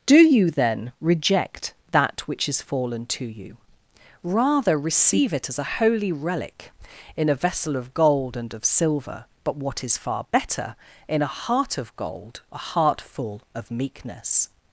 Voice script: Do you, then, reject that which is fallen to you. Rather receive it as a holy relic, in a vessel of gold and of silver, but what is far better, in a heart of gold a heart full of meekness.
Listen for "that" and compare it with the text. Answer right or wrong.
right